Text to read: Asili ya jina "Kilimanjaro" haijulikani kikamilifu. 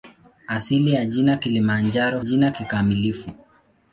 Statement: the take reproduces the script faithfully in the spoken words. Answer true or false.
false